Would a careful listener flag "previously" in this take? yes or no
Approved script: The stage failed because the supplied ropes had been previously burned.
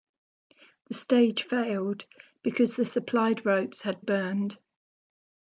yes